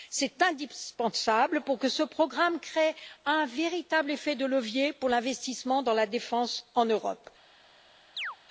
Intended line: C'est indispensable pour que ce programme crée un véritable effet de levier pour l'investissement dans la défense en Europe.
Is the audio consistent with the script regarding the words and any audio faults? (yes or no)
no